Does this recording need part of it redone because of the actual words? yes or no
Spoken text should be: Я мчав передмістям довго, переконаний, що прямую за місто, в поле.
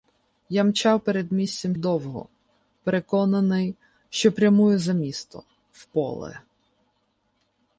no